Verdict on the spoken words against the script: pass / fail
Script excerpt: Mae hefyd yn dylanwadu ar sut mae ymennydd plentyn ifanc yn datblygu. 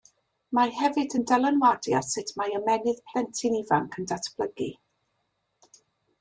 pass